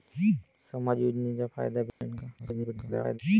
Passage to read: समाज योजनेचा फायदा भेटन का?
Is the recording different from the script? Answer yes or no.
yes